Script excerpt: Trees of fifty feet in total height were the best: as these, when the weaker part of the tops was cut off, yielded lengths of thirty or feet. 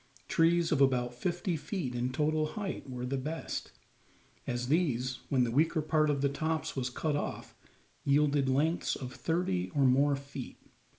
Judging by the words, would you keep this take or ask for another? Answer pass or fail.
fail